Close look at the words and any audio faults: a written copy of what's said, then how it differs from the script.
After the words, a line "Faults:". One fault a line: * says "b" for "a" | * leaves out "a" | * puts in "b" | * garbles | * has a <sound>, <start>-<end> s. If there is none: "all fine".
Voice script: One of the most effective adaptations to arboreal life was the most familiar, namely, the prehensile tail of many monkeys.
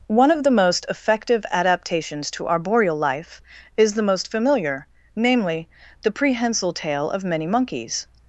One of the most effective adaptations to arboreal life is the most familiar, namely, the prehensile tail of many monkeys.
Faults:
* says "is" for "was"